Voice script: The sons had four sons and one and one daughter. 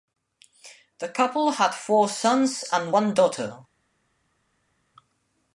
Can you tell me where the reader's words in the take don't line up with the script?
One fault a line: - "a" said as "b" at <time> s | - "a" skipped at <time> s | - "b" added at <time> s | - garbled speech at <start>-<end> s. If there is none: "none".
- "sons" said as "couple" at 1.1 s
- "and one" skipped at 3.1 s